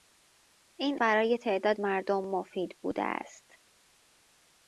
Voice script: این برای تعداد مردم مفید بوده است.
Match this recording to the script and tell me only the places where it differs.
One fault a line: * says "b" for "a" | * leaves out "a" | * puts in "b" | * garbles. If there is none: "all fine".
all fine